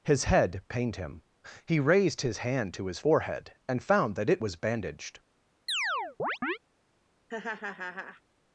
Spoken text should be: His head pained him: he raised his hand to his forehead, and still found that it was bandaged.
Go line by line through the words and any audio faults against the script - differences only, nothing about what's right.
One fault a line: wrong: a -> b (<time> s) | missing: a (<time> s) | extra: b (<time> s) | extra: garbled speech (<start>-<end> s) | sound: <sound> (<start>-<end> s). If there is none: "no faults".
missing: still (3.8 s)
sound: chirp (5.7-6.6 s)
sound: laugh (7.3-8.2 s)